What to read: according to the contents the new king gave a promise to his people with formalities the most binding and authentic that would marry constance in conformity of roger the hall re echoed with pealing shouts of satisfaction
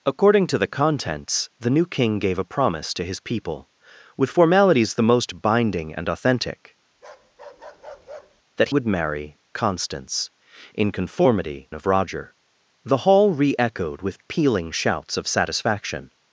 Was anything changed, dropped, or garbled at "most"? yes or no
no